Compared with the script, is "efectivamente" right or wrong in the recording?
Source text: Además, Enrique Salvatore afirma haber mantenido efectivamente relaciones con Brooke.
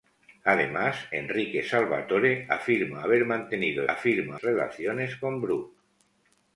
wrong